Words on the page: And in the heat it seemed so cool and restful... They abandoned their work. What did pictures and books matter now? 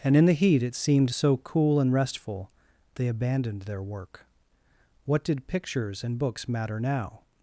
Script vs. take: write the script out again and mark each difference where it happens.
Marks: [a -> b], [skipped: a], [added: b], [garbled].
And in the heat it seemed so cool and restful... They abandoned their work. What did pictures and books matter now?